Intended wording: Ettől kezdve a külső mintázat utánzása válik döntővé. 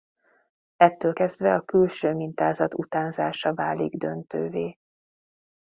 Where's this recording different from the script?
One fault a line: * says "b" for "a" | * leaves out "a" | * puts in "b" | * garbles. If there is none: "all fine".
all fine